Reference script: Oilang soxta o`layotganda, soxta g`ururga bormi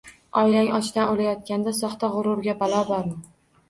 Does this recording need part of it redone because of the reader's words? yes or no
yes